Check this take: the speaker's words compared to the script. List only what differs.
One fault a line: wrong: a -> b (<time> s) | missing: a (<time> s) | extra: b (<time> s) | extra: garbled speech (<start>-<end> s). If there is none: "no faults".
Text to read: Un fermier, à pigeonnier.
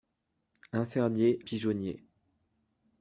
missing: à (1.4 s)